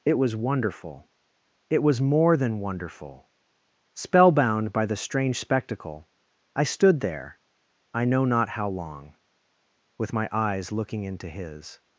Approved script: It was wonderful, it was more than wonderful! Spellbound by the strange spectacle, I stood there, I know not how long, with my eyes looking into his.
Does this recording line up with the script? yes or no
yes